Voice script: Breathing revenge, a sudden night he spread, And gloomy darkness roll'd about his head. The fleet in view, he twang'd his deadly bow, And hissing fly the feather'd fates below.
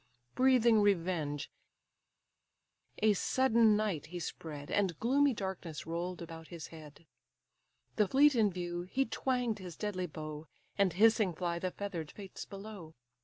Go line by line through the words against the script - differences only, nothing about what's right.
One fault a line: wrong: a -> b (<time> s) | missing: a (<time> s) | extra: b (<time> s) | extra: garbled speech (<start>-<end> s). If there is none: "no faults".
no faults